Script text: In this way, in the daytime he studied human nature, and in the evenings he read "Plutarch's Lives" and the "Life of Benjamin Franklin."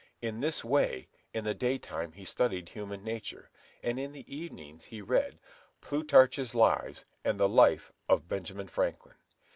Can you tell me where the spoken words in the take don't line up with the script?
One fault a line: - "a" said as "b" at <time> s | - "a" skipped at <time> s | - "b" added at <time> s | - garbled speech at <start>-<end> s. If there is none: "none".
none